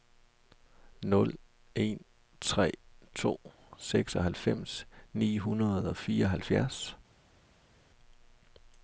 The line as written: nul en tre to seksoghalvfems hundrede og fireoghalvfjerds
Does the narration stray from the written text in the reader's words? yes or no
yes